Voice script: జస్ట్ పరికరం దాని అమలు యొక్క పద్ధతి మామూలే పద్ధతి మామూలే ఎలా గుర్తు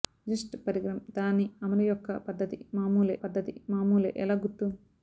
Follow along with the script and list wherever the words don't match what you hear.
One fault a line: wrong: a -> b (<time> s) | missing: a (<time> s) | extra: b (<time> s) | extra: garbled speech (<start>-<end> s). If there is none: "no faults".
no faults